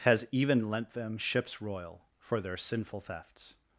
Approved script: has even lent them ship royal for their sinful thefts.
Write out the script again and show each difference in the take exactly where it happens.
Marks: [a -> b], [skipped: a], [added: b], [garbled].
has even lent them [ship -> ships] royal for their sinful thefts.